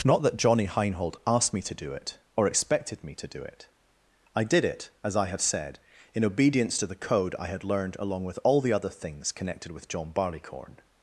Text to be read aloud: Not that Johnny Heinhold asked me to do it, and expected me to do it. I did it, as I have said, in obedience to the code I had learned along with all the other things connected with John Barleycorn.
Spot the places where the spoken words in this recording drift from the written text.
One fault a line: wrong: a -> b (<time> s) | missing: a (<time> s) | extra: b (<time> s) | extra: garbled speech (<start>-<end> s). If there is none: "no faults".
wrong: and -> or (2.4 s)